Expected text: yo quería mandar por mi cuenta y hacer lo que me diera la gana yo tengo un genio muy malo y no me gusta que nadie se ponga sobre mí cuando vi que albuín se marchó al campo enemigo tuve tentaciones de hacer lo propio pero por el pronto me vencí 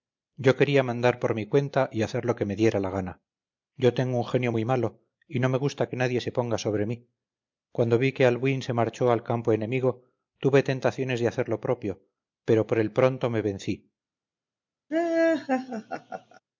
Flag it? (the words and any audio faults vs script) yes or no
yes